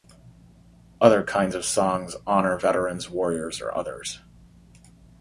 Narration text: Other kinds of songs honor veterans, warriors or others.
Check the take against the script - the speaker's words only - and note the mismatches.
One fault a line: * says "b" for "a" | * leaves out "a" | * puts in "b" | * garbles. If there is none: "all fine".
all fine